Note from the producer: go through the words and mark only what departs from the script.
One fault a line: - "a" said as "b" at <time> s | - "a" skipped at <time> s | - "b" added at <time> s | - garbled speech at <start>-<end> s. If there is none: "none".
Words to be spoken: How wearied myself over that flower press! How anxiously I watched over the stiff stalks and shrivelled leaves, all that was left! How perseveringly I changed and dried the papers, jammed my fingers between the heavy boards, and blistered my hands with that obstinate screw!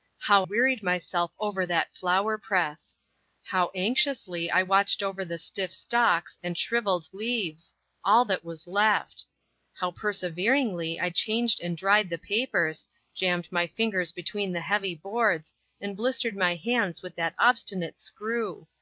none